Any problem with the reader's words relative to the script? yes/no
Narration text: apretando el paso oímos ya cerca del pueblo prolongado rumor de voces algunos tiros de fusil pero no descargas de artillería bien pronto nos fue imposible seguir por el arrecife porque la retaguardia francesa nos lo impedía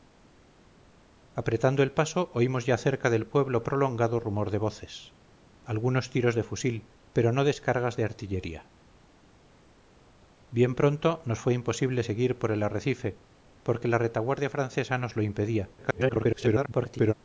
yes